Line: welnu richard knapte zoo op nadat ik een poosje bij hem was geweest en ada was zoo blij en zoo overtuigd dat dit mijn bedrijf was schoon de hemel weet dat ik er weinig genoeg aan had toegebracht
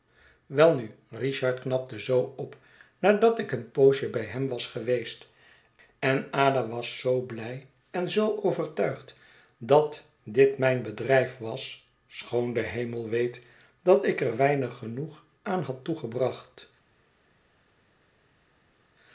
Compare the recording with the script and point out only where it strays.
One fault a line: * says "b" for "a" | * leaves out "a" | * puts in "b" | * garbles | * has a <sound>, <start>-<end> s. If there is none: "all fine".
all fine